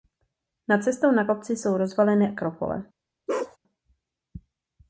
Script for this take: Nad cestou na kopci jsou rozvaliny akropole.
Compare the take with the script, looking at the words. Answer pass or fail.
pass